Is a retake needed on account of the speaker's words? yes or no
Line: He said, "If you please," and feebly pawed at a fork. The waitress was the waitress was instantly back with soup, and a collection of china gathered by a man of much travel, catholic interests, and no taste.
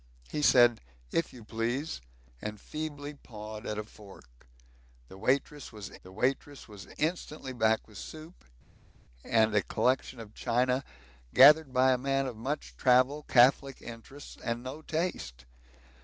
no